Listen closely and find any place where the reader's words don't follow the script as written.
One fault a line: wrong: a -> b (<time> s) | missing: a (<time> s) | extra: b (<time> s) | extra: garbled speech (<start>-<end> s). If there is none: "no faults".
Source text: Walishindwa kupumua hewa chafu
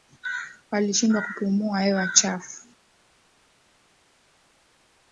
no faults